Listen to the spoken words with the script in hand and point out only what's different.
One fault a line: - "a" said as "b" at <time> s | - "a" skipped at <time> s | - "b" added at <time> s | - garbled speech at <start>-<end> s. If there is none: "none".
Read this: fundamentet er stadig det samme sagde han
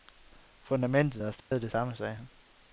none